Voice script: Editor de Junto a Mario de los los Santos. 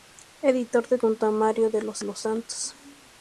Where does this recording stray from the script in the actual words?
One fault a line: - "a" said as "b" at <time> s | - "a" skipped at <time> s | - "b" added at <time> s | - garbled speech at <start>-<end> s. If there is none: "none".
none